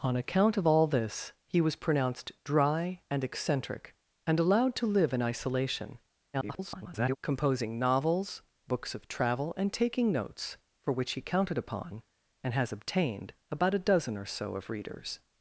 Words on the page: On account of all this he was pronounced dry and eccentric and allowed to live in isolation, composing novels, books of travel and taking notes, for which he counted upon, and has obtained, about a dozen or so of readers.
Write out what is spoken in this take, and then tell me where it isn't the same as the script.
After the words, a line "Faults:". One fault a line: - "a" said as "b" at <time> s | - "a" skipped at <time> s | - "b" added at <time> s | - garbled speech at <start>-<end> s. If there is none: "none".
On account of all this he was pronounced dry and eccentric and allowed to live in isolation, [garbled] composing novels, books of travel and taking notes, for which he counted upon, and has obtained, about a dozen or so of readers.
Faults:
- garbled speech at 6.3-7.2 s